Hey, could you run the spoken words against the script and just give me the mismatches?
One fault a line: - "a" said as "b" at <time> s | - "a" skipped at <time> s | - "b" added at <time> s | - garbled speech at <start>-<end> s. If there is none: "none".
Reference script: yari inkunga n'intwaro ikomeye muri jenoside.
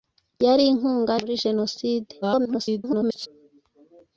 - "n'intwaro ikomeye" skipped at 1.1 s
- garbled speech at 2.2-3.3 s